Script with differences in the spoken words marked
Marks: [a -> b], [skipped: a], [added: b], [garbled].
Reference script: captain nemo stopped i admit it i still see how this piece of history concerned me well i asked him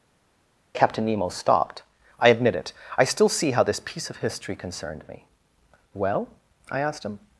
captain nemo stopped i admit it i still see how this piece of history concerned me well i asked him